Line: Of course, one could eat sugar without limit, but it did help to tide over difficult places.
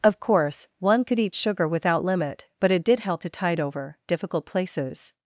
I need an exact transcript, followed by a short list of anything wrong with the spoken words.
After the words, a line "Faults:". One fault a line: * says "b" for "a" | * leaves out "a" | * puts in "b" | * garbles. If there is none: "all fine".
Of course, one could eat sugar without limit, but it did help to tide over difficult places.
Faults:
all fine